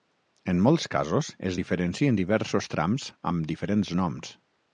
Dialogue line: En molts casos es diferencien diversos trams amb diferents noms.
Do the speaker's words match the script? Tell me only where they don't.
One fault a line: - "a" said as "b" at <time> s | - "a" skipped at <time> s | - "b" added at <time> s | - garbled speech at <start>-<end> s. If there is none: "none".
none